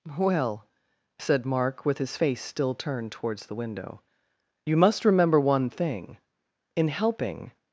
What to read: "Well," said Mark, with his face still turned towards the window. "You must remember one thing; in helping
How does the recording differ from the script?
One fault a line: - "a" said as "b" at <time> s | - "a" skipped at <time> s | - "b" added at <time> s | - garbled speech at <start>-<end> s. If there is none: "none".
none